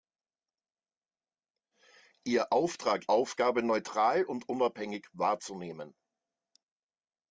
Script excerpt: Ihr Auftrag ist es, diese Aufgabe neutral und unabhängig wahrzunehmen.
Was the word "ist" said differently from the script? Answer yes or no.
yes